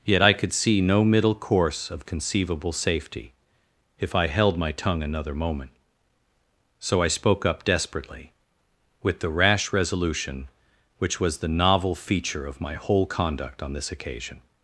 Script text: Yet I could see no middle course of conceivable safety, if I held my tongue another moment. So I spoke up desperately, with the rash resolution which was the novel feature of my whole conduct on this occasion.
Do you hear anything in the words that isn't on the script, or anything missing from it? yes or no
no